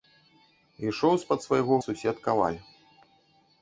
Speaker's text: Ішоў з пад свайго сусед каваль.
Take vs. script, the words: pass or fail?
pass